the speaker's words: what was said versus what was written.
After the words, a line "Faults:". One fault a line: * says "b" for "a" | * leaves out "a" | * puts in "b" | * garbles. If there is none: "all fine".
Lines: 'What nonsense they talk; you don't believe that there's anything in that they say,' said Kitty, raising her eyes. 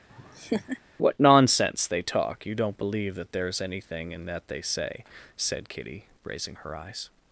'What nonsense they talk; you don't believe that there's anything in that they say,' said Kitty, raising her eyes.
Faults:
all fine